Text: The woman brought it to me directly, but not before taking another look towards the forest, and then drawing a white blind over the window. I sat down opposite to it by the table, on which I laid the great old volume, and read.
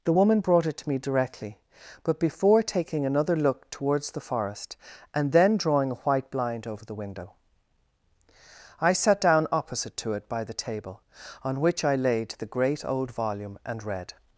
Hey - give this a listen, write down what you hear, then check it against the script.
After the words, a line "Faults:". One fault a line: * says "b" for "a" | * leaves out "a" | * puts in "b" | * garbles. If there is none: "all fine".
The woman brought it to me directly, but before taking another look towards the forest, and then drawing a white blind over the window. I sat down opposite to it by the table, on which I laid the great old volume, and read.
Faults:
* leaves out "not"